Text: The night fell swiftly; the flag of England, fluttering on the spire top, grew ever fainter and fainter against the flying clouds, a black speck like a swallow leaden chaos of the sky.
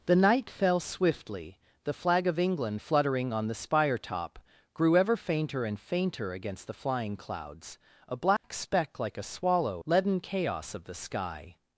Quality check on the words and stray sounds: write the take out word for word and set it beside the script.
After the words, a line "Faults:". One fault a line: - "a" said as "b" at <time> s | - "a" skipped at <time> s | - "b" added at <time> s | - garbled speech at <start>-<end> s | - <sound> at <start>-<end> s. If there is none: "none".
The night fell swiftly; the flag of England, fluttering on the spire top, grew ever fainter and fainter against the flying clouds, a black speck like a swallow leaden chaos of the sky.
Faults:
- dropout at 8.4-8.4 s